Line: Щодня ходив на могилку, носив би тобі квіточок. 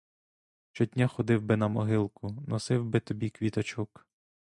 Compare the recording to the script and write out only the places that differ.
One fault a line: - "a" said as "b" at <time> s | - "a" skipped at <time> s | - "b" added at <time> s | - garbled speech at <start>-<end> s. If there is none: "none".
- "би" added at 1.4 s